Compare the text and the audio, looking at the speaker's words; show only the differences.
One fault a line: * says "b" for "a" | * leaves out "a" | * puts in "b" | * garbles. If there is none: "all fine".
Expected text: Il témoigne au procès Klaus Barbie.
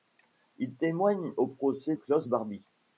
all fine